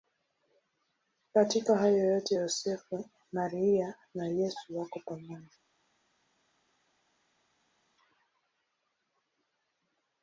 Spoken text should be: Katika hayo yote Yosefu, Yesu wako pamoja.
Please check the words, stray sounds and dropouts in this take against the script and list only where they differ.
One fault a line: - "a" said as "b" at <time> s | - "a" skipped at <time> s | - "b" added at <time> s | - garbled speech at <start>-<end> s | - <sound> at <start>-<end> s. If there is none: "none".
- "Maria na" added at 3.3 s